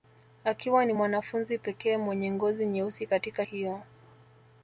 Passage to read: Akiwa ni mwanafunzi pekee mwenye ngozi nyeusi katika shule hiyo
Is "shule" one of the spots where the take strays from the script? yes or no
yes